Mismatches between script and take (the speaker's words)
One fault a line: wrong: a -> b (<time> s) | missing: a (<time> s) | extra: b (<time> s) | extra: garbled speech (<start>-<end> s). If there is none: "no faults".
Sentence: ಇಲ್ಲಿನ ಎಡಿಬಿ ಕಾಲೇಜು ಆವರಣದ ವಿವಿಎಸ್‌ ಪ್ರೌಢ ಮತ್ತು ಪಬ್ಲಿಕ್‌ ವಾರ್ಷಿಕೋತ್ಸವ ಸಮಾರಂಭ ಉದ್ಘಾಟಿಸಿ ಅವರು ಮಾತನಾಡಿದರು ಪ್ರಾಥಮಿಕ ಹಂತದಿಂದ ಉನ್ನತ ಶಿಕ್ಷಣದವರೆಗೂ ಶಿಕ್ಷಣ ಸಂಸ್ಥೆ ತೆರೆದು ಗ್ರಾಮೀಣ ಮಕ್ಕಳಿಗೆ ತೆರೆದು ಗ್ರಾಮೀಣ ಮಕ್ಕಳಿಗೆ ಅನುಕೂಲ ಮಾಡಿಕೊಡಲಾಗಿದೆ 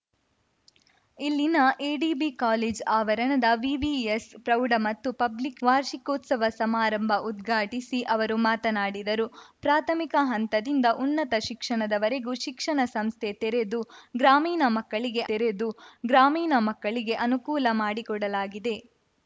no faults